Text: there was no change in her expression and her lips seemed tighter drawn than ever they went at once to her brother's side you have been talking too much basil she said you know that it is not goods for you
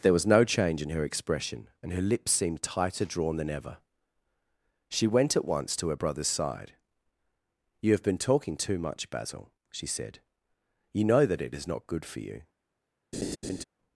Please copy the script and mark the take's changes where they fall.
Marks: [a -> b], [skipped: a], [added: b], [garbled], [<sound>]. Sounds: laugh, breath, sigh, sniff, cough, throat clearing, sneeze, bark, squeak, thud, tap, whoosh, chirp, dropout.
there was no change in her expression and her lips seemed tighter drawn than ever [they -> she] went at once to her brother's side you have been talking too much basil she said you know that it is not [goods -> good] for you [laugh]